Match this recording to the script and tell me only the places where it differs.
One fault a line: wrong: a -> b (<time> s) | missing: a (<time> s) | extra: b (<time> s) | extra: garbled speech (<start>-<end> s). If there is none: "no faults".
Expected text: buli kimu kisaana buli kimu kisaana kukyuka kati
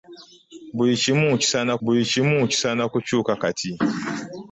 no faults